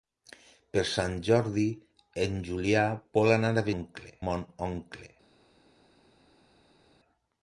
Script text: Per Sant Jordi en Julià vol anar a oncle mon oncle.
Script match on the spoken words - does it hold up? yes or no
yes